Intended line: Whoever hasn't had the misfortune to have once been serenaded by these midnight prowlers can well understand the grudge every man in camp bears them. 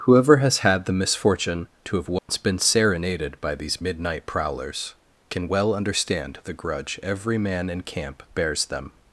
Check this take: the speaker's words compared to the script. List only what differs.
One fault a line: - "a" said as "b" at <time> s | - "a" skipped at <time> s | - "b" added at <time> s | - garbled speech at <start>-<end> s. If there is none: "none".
- "hasn't" said as "has" at 0.4 s